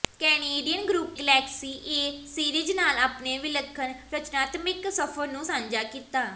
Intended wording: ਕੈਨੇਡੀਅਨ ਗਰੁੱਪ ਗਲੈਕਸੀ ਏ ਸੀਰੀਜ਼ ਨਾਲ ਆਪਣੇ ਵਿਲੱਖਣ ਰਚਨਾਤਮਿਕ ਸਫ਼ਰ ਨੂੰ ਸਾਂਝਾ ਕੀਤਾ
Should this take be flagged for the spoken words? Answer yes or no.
no